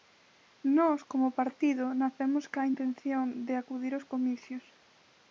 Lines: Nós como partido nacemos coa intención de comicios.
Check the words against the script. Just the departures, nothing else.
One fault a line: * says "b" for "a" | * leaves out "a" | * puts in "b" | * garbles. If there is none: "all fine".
* puts in "acudir aos"